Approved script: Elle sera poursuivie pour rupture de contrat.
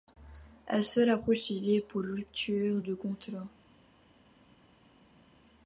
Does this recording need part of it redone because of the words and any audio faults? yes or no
no